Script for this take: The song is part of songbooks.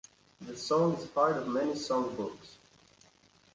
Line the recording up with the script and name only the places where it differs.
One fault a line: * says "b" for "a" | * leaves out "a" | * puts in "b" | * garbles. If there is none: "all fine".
* puts in "many"